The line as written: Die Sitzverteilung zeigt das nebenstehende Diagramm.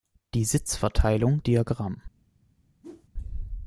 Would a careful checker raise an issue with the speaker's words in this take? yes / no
yes